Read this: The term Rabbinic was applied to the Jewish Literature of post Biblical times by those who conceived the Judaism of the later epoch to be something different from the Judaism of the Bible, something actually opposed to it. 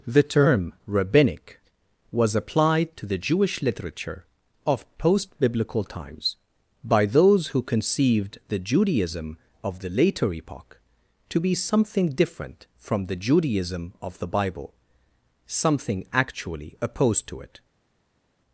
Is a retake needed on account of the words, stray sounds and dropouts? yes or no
no